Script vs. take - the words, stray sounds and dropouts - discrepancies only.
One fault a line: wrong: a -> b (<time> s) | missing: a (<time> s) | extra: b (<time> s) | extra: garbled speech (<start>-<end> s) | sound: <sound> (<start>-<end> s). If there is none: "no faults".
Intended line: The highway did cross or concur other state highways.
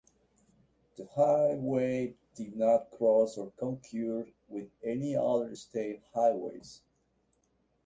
extra: not (2.6 s)
extra: with any (4.5 s)